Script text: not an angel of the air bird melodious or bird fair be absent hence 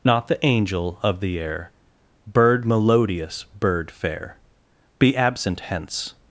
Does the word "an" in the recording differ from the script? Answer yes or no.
yes